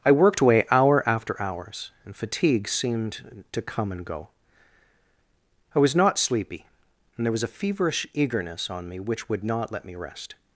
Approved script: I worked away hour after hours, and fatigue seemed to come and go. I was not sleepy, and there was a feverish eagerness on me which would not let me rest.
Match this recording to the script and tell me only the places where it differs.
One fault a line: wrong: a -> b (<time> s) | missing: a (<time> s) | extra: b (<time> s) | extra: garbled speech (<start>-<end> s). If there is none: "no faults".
no faults